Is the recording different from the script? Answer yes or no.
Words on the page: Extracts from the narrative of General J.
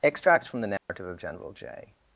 no